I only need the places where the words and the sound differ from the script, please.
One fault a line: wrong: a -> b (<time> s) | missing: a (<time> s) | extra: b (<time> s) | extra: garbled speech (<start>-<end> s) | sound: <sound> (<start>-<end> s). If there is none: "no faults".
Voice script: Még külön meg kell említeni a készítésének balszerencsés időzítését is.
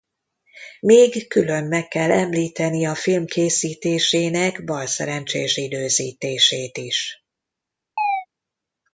extra: film (3.0 s)
sound: chirp (8.0-8.3 s)